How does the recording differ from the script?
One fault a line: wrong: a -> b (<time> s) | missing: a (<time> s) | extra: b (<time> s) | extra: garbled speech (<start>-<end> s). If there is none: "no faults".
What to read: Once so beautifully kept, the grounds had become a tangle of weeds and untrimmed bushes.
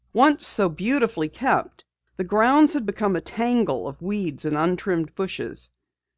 no faults